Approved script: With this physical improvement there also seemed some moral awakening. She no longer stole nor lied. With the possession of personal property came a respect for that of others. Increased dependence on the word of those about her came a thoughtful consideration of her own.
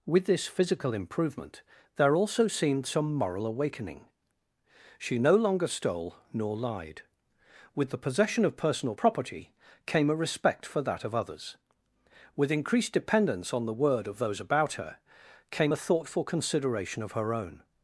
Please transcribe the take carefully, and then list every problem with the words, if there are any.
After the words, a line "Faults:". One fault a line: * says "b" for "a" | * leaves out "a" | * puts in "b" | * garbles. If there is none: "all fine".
With this physical improvement there also seemed some moral awakening. She no longer stole nor lied. With the possession of personal property came a respect for that of others. With increased dependence on the word of those about her came a thoughtful consideration of her own.
Faults:
* puts in "With"